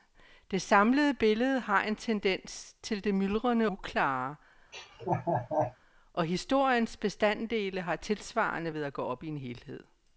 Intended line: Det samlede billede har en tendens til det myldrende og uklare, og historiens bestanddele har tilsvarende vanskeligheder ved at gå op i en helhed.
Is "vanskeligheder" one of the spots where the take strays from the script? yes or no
yes